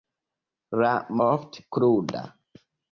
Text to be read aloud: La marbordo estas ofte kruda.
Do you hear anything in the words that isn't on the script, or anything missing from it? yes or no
yes